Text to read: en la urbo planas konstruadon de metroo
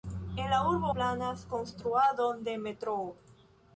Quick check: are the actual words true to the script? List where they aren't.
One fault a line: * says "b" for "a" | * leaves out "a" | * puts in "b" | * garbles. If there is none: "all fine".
all fine